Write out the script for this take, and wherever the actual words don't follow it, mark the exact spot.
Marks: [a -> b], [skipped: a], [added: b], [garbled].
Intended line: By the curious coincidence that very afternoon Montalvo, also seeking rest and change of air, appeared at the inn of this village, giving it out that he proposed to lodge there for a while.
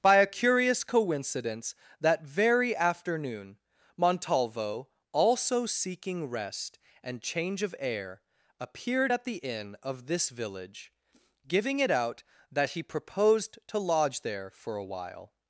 By [the -> a] curious coincidence that very afternoon Montalvo, also seeking rest and change of air, appeared at the inn of this village, giving it out that he proposed to lodge there for a while.